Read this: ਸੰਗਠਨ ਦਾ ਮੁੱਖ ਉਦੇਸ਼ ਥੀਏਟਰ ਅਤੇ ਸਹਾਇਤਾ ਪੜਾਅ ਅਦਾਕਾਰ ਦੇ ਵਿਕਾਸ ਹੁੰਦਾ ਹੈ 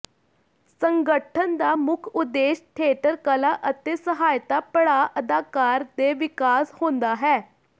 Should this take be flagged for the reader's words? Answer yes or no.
yes